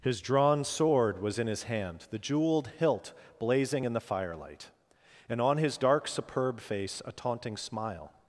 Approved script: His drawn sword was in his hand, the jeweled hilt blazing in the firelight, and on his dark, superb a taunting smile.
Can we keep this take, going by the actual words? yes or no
no